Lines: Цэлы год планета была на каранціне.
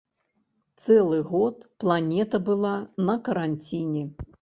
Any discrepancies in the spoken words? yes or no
no